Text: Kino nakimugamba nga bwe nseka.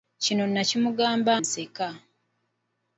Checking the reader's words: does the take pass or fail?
fail